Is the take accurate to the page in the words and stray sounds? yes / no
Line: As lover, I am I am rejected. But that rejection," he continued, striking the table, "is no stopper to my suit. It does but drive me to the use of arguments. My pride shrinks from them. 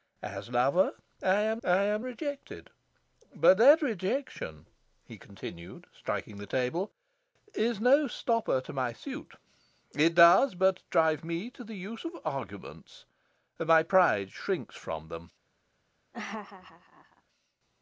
no